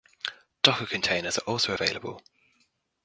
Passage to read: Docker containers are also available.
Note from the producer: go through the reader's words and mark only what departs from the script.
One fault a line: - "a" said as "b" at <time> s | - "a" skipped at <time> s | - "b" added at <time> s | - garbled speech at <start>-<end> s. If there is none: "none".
none